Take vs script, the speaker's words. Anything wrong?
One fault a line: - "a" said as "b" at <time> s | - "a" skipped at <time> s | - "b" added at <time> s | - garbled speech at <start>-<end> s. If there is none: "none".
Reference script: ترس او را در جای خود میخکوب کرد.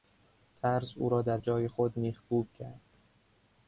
none